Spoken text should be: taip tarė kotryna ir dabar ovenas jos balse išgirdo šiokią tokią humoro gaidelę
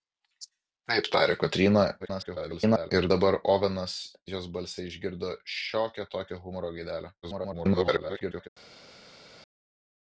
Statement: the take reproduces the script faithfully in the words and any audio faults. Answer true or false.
false